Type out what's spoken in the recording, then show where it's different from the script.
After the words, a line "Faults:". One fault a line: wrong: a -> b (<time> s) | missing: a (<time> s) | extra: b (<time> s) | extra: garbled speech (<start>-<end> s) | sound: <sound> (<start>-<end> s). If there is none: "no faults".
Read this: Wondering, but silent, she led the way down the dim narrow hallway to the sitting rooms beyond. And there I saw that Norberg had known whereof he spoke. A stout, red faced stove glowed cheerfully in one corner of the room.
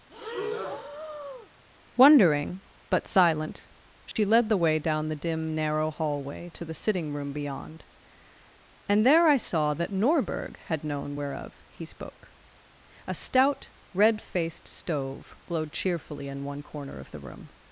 Wondering, but silent, she led the way down the dim narrow hallway to the sitting room beyond. And there I saw that Norberg had known whereof he spoke. A stout, red faced stove glowed cheerfully in one corner of the room.
Faults:
sound: breath (0.1-1.5 s)
sound: dropout (4.1-4.2 s)
wrong: rooms -> room (7.1 s)